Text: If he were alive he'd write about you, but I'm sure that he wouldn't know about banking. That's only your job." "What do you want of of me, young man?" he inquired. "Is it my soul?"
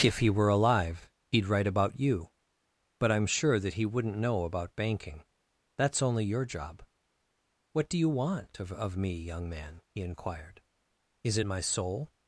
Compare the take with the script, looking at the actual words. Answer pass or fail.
pass